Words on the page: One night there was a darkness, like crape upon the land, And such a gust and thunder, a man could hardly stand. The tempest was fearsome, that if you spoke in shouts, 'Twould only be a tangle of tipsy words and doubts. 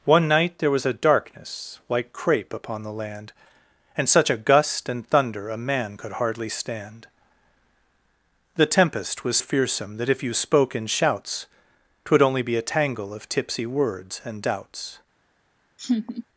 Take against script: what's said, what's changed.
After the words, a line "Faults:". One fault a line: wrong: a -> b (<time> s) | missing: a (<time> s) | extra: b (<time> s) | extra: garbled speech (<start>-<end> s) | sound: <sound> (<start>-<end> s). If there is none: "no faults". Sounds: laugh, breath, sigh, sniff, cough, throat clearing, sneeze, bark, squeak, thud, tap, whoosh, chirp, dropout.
One night there was a darkness, like crape upon the land, And such a gust and thunder, a man could hardly stand. The tempest was fearsome, that if you spoke in shouts, 'Twould only be a tangle of tipsy words and doubts.
Faults:
sound: laugh (15.8-16.2 s)